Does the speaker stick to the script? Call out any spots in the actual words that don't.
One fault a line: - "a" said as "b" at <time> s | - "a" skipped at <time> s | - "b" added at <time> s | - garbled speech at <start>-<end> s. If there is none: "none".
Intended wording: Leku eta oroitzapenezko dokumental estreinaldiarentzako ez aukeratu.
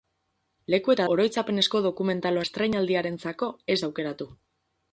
none